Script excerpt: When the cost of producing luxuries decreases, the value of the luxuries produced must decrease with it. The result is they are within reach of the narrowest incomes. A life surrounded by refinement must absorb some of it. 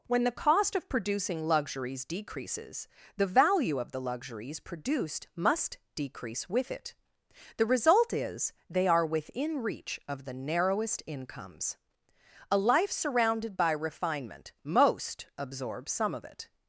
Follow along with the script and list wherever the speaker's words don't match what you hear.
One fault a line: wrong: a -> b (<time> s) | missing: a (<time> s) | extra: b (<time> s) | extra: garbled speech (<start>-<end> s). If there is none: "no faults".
wrong: must -> most (14.6 s)